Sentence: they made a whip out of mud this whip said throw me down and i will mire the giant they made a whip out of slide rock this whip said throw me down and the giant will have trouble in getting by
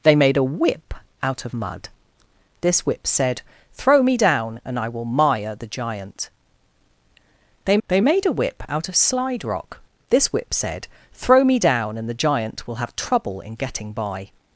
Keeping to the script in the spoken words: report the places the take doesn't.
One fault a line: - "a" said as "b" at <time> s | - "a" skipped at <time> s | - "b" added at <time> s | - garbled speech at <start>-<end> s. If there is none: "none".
- "they" added at 7.9 s